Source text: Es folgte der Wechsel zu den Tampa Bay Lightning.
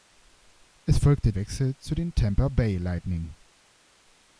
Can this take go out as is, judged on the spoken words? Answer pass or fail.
fail